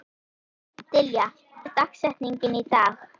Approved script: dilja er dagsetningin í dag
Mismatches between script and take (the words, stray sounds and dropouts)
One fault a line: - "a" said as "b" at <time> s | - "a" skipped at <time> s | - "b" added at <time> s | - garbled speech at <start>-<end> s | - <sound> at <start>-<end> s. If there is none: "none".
none